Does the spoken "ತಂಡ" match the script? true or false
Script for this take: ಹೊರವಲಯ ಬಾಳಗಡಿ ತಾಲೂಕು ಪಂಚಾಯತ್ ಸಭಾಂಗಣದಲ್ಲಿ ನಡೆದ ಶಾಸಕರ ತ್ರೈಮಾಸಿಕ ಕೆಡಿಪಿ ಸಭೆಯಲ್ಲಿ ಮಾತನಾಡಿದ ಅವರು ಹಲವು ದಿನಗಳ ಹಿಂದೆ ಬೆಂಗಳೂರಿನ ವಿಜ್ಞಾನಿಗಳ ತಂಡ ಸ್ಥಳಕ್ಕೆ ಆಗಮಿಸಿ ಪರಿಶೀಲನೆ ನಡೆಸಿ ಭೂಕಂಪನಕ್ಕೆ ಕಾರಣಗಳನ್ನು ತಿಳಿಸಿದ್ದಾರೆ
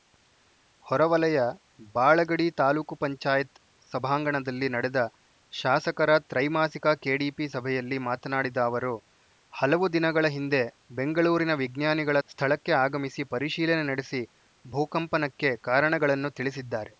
false